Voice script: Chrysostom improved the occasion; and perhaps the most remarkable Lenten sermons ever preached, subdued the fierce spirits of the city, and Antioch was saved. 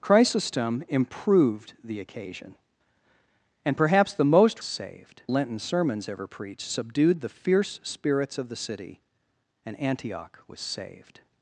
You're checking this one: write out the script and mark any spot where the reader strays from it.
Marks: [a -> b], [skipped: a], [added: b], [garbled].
Chrysostom improved the occasion; and perhaps the most [remarkable -> saved] Lenten sermons ever preached, subdued the fierce spirits of the city, and Antioch was saved.